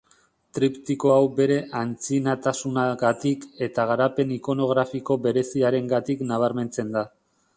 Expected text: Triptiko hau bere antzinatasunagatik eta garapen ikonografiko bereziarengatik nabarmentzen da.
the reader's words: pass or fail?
pass